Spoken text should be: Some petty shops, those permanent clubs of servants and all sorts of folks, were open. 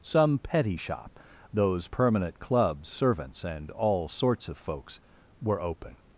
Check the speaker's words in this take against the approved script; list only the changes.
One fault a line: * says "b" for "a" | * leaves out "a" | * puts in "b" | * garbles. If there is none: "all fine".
* says "shop" for "shops"
* leaves out "of"